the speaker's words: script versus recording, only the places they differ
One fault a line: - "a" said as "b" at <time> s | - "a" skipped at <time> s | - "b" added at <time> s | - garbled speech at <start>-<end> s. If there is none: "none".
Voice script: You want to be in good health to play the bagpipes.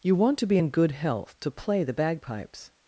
none